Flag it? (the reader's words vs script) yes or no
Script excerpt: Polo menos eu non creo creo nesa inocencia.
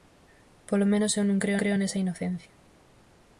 no